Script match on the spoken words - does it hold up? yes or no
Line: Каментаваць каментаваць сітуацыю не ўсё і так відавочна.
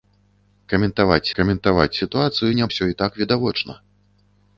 yes